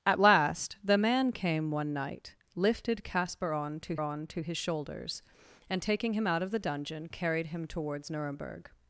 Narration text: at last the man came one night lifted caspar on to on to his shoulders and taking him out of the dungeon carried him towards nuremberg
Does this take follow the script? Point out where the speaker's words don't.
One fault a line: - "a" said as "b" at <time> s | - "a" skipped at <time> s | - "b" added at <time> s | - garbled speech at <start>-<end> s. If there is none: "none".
none